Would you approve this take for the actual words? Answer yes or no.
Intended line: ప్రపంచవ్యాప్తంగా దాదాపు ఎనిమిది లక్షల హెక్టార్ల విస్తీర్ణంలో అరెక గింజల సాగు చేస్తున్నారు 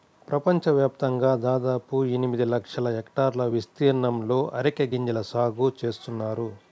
yes